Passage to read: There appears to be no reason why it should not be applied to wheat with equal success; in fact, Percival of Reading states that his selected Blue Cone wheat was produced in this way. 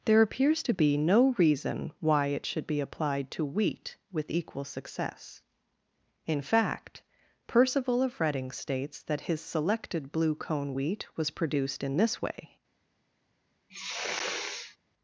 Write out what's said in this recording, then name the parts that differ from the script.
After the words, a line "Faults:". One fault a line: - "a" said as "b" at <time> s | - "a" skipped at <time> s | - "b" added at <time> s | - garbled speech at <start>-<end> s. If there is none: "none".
There appears to be no reason why it should be applied to wheat with equal success; in fact, Percival of Reading states that his selected Blue Cone wheat was produced in this way.
Faults:
- "not" skipped at 2.6 s